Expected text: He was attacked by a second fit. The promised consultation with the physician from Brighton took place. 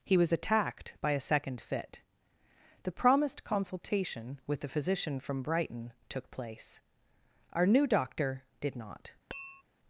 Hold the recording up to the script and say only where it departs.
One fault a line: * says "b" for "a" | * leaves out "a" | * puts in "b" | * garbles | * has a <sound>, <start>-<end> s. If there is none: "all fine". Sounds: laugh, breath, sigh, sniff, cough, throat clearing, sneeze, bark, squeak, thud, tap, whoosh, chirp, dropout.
* puts in "Our new doctor did not"
* has a tap, 9.3-9.6 s